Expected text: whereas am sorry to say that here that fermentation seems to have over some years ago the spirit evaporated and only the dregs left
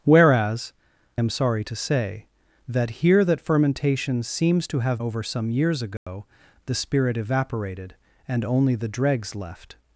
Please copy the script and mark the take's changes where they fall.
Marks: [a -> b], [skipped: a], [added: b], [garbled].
whereas am sorry to say that here that fermentation seems to have over some years ago the spirit evaporated and only the dregs left